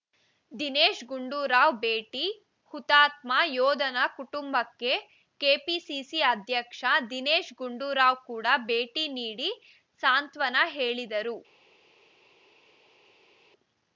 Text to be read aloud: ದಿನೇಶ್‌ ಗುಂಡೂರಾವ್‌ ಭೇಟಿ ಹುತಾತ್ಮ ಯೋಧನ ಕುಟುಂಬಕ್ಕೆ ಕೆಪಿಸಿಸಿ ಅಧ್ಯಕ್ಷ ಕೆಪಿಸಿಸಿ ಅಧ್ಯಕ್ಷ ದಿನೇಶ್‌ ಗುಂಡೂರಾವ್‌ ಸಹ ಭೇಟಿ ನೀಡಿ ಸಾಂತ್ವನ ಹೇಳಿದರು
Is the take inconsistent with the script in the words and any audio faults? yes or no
yes